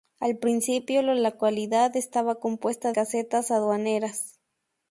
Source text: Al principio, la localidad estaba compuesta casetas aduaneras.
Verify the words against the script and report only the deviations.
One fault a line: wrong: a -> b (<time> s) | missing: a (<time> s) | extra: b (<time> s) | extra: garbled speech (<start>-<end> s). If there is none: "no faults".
no faults